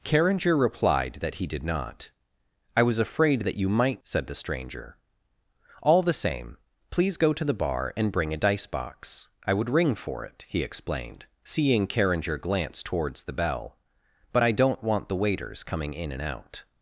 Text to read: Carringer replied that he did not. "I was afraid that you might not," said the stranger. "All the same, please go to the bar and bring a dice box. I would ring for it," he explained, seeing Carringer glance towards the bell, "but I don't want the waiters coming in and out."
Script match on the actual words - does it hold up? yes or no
no